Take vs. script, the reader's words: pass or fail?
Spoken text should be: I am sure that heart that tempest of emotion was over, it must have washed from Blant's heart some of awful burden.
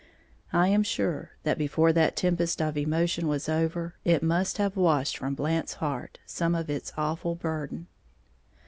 fail